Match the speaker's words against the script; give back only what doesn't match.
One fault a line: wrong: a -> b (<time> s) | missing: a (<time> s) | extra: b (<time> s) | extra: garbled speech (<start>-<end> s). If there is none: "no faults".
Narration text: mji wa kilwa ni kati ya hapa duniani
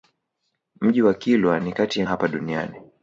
no faults